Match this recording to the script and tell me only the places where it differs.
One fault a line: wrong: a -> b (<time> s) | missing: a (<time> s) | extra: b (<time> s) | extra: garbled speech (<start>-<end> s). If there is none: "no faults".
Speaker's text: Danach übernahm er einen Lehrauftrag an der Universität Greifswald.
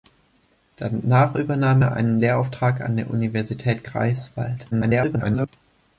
extra: garbled speech (4.7-5.5 s)